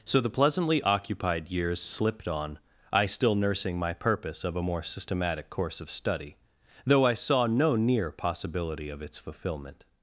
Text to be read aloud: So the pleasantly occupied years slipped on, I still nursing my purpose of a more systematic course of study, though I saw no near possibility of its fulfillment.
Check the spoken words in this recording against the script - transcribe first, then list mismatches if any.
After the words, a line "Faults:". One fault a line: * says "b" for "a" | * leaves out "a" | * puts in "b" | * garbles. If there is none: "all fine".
So the pleasantly occupied years slipped on, I still nursing my purpose of a more systematic course of study, though I saw no near possibility of its fulfillment.
Faults:
all fine